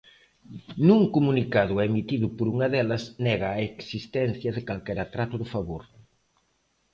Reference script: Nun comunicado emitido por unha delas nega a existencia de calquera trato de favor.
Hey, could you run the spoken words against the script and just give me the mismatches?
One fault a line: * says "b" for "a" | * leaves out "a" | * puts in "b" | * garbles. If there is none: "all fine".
all fine